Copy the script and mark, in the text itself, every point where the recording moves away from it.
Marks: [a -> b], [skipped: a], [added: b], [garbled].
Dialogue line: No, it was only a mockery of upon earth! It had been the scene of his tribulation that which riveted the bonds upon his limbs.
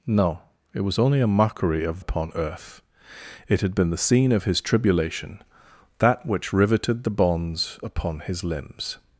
No, it was only a mockery of upon earth! It had been the scene of his tribulation that which riveted the bonds upon his limbs.